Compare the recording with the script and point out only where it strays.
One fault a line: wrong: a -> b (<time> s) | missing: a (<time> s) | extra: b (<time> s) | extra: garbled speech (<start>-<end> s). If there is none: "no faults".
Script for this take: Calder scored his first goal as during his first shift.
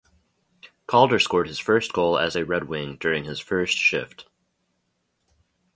extra: a Red Wing (2.3 s)